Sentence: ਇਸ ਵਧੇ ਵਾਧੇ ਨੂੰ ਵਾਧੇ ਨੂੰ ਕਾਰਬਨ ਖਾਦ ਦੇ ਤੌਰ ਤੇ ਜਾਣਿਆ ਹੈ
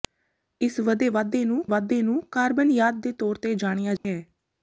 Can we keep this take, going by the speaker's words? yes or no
yes